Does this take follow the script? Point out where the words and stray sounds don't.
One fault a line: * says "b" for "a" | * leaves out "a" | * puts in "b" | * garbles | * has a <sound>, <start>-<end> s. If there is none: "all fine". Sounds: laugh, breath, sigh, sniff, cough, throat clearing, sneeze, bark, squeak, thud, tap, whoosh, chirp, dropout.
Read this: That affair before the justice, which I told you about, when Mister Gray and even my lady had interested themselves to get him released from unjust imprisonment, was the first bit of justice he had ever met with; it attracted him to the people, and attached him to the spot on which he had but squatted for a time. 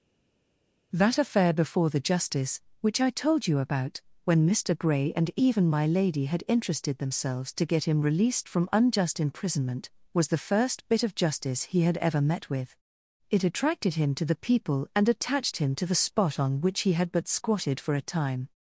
all fine